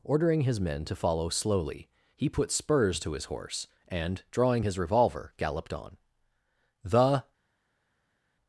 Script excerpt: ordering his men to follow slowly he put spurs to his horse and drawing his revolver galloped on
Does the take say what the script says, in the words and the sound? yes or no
no